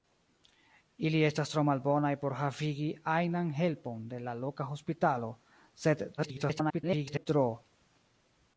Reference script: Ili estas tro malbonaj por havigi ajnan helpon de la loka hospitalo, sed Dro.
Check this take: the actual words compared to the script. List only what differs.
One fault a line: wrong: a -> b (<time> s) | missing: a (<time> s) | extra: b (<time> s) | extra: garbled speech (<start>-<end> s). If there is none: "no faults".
extra: garbled speech (6.2-7.3 s)